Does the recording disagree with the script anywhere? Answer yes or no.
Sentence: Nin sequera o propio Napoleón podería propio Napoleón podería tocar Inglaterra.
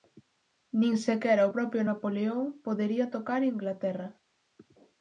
yes